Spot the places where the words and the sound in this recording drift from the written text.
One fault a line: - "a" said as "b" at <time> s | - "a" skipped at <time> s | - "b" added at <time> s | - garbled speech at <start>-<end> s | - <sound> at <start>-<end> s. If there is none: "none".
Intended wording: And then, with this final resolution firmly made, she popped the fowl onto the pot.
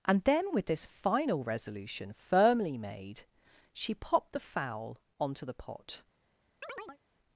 - chirp at 6.6-7.0 s